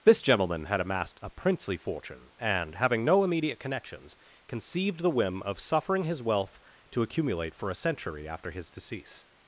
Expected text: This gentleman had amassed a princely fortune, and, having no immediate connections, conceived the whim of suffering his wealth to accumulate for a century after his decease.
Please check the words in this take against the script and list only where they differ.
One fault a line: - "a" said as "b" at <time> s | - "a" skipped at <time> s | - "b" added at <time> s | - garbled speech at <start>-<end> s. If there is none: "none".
none